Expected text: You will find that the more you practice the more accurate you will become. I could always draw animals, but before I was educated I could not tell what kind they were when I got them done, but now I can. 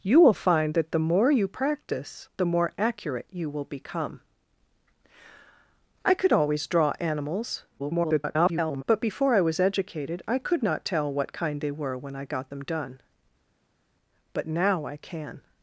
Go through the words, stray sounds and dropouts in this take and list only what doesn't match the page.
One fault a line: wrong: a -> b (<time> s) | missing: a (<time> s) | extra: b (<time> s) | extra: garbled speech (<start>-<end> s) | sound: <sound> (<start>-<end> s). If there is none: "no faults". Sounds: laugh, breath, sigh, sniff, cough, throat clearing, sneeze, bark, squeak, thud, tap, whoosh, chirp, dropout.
extra: garbled speech (7.8-8.8 s)